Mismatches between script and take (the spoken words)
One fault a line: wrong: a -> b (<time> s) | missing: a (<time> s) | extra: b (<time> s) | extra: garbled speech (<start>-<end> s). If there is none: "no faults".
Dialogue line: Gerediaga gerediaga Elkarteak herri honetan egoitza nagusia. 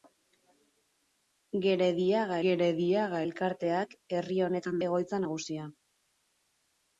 no faults